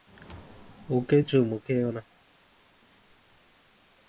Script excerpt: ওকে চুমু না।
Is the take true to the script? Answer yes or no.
no